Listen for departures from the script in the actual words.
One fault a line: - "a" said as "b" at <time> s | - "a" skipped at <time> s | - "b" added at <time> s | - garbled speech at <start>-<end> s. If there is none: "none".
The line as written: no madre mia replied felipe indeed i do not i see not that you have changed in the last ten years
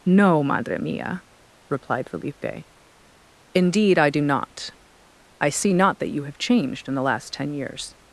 none